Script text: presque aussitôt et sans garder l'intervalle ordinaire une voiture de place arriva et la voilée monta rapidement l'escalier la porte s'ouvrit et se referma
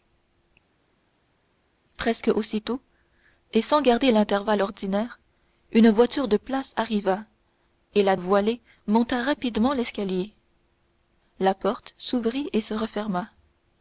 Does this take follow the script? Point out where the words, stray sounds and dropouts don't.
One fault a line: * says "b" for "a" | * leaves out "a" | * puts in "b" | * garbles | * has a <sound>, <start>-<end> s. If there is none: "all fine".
all fine